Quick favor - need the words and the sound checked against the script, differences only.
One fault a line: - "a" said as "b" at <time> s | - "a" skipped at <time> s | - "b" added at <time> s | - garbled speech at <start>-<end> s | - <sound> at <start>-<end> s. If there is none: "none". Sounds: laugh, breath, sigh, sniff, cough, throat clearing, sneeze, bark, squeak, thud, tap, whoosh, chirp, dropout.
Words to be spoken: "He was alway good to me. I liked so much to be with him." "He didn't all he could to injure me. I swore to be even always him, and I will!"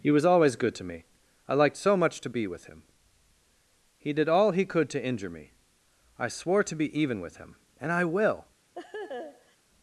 - "alway" said as "always" at 0.2 s
- "didn't" said as "did" at 4.1 s
- "always" said as "with" at 7.2 s
- laugh at 8.7-9.6 s